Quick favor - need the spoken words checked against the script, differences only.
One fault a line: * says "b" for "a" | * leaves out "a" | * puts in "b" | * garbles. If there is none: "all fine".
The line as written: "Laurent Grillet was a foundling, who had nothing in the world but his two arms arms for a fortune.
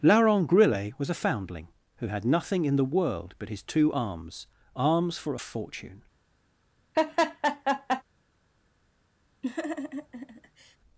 all fine